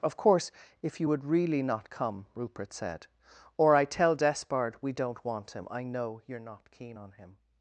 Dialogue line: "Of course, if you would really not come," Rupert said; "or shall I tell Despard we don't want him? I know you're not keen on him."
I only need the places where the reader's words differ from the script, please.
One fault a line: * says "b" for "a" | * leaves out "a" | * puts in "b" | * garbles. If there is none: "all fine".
* leaves out "shall"